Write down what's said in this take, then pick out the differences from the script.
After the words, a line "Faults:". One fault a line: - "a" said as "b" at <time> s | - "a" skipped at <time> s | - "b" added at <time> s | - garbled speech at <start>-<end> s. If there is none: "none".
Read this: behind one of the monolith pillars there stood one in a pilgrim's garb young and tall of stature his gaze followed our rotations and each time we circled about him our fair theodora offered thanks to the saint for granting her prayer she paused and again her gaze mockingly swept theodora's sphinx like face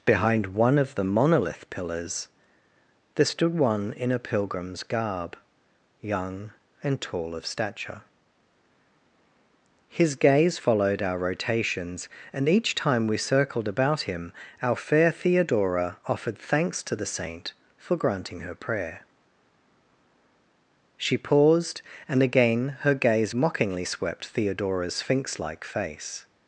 behind one of the monolith pillars there stood one in a pilgrim's garb young and tall of stature his gaze followed our rotations and each time we circled about him our fair theodora offered thanks to the saint for granting her prayer she paused and again her gaze mockingly swept theodora's sphinx like face
Faults:
none